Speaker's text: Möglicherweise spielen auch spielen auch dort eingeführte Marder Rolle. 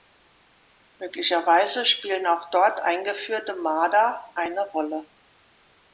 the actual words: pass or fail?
fail